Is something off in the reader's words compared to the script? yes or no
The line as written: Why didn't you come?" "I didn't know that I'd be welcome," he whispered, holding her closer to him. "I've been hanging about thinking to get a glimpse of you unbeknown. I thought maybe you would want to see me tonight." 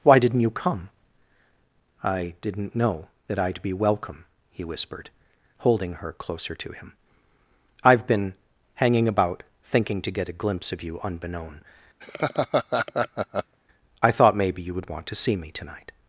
no